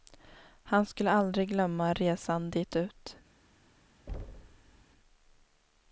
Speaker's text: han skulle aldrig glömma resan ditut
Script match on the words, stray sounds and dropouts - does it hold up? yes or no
no